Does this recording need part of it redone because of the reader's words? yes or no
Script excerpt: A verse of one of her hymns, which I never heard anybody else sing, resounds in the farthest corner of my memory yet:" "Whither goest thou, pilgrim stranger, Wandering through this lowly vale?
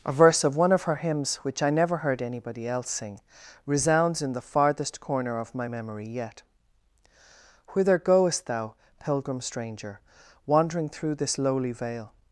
no